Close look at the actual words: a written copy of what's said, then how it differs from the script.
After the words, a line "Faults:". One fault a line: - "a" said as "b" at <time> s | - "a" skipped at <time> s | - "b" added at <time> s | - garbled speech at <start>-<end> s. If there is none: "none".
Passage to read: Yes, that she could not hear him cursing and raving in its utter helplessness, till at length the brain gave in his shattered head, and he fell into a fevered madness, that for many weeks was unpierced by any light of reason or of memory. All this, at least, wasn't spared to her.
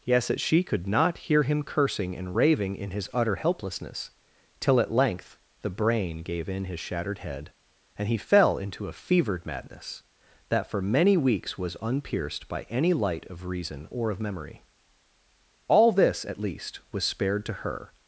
Yes, that she could not hear him cursing and raving in his utter helplessness, till at length the brain gave in his shattered head, and he fell into a fevered madness, that for many weeks was unpierced by any light of reason or of memory. All this, at least, was spared to her.
Faults:
- "its" said as "his" at 2.9 s
- "wasn't" said as "was" at 16.9 s